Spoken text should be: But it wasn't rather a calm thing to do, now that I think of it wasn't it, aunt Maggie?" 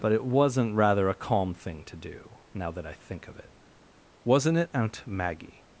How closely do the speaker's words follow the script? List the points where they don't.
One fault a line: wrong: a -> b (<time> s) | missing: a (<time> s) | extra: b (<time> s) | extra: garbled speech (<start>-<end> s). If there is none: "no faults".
no faults